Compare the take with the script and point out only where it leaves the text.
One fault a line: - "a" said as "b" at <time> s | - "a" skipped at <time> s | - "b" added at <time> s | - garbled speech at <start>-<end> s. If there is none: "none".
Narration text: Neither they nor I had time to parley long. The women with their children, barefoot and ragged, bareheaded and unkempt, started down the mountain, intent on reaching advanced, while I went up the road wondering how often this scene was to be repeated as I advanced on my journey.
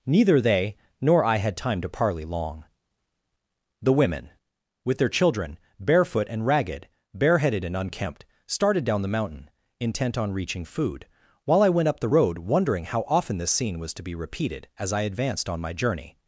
- "advanced" said as "food" at 10.7 s